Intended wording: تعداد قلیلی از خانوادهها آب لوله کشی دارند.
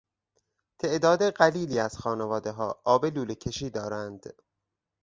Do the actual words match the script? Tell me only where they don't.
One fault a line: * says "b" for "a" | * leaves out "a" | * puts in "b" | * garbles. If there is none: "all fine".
all fine